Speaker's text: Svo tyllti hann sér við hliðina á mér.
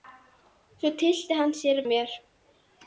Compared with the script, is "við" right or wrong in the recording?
wrong